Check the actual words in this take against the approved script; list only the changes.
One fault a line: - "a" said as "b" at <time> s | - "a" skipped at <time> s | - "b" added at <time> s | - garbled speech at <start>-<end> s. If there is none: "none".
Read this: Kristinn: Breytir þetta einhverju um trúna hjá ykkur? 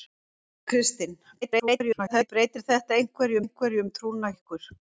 - garbled speech at 1.4-2.3 s
- "einhverju" added at 3.4 s
- "hjá" skipped at 4.3 s